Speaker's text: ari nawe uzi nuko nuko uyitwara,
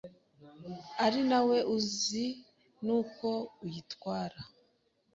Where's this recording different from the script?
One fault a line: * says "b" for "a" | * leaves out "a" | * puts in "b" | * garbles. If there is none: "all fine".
* leaves out "nuko"